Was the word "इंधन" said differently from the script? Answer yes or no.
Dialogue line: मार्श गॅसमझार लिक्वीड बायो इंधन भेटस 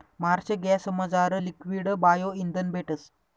no